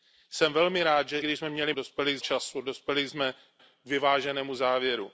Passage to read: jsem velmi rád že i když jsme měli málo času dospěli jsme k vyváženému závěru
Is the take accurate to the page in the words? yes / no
no